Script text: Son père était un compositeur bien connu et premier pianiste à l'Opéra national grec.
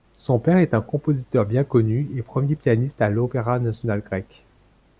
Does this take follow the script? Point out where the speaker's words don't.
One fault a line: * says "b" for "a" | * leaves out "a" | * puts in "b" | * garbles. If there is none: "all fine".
* says "est" for "était"